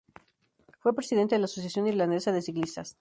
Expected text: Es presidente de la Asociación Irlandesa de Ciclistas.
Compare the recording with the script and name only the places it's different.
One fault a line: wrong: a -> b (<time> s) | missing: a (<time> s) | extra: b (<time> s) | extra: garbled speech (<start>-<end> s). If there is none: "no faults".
wrong: Es -> Fue (0.8 s)